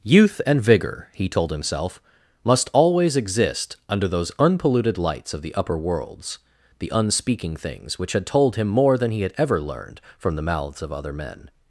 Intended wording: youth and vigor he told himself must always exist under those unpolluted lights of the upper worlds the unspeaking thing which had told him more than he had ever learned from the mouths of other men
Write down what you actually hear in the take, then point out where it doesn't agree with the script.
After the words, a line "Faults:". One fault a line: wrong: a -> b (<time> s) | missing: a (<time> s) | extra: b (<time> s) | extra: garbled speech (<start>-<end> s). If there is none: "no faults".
youth and vigor he told himself must always exist under those unpolluted lights of the upper worlds the unspeaking things which had told him more than he had ever learned from the mouths of other men
Faults:
wrong: thing -> things (7.5 s)